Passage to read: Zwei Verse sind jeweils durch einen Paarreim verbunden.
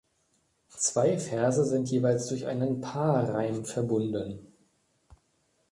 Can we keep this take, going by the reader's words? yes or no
yes